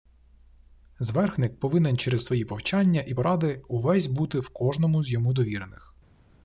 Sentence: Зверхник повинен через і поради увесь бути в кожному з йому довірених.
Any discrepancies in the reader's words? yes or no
yes